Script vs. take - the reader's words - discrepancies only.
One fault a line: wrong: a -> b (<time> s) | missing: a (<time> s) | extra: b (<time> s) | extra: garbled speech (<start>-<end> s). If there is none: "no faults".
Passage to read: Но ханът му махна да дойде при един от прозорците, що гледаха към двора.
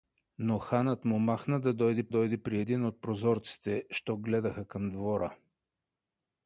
extra: дойде (2.1 s)